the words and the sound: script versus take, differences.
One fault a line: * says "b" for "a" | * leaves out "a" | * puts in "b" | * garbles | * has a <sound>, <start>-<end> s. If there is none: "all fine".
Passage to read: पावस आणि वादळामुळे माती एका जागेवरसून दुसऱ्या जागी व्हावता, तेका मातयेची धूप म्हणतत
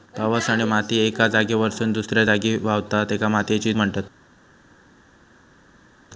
* leaves out "वादळामुळे"
* leaves out "धूप"